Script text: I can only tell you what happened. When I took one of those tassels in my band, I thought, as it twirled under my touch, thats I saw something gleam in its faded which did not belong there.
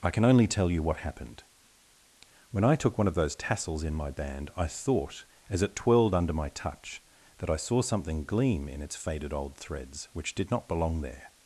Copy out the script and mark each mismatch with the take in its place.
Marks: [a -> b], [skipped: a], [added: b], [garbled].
I can only tell you what happened. When I took one of those tassels in my band, I thought, as it twirled under my touch, [thats -> that] I saw something gleam in its faded [added: old threads] which did not belong there.